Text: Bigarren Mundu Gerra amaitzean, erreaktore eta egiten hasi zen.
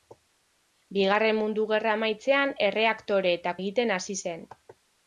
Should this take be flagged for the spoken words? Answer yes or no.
no